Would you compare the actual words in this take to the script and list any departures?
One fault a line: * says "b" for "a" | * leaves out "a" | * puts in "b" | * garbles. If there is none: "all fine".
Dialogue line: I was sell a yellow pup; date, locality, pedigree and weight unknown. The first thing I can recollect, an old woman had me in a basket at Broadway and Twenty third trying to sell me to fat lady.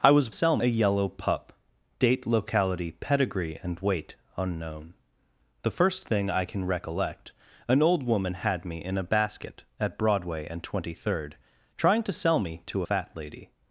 all fine